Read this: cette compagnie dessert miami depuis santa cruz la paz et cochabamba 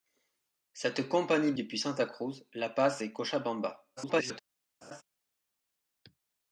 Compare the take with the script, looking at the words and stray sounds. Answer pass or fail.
fail